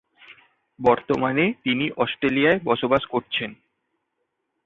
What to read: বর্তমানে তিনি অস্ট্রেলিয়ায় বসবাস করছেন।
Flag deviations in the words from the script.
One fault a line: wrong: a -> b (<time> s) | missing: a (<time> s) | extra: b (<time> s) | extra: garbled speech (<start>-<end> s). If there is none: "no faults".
no faults